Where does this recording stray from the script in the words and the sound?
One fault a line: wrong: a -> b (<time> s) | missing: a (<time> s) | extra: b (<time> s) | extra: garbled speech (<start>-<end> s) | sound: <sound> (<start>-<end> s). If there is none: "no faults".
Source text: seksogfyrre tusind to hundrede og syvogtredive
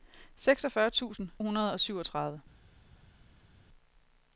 missing: to (1.3 s)